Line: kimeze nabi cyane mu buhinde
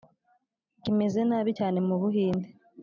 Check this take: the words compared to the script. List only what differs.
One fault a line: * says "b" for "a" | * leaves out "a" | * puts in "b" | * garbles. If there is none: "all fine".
all fine